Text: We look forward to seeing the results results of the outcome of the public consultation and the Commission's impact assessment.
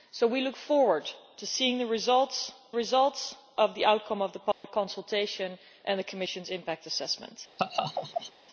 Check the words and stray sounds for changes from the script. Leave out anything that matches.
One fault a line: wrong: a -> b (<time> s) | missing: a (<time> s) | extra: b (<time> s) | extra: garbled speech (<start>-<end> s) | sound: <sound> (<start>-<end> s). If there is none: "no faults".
sound: dropout (4.5-4.6 s)
sound: laugh (7.6-8.3 s)